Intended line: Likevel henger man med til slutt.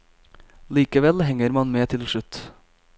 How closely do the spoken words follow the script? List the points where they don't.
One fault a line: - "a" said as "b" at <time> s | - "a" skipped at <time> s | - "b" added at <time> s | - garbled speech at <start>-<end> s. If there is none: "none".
none